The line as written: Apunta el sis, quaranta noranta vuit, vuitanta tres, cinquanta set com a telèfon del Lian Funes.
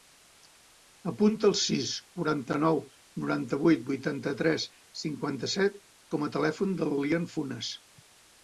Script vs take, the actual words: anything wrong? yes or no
yes